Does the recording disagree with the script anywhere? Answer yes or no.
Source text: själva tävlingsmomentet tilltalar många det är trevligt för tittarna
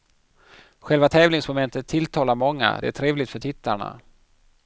no